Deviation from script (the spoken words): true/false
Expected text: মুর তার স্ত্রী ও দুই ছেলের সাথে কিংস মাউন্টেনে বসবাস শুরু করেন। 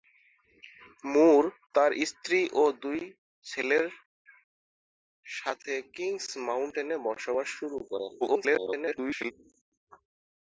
true